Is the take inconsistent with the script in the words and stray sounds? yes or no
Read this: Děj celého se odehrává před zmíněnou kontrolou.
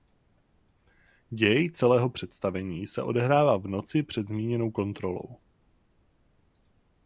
yes